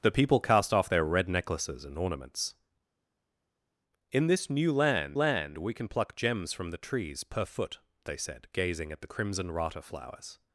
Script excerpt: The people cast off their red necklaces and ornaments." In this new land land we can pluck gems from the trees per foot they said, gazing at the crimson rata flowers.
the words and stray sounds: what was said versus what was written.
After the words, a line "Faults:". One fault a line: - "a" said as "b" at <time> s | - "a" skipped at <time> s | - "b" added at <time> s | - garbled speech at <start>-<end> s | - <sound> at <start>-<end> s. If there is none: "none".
The people cast off their red necklaces and ornaments." In this new land land we can pluck gems from the trees per foot they said, gazing at the crimson rata flowers.
Faults:
none